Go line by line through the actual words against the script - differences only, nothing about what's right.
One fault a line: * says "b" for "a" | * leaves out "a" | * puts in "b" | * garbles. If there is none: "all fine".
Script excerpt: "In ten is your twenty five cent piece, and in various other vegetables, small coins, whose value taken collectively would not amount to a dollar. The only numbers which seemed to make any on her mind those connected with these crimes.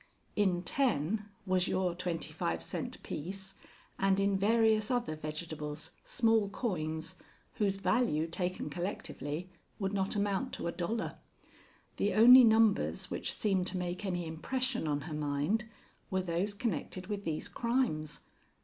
* says "was" for "is"
* puts in "impression"
* puts in "were"